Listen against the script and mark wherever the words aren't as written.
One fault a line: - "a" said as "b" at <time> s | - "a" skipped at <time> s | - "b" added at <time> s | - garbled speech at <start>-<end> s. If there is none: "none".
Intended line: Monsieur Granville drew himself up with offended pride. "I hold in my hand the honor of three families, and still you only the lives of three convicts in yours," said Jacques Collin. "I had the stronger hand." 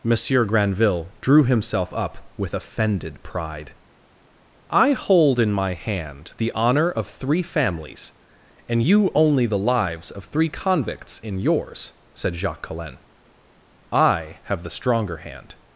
- "still" skipped at 8.8 s
- "had" said as "have" at 14.4 s